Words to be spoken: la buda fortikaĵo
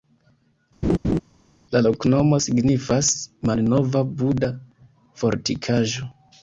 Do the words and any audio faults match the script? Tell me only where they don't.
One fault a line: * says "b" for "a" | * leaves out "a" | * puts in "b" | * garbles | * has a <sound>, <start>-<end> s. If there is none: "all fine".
* has a laugh, 0.8-1.2 s
* puts in "loknomo signifas malnova"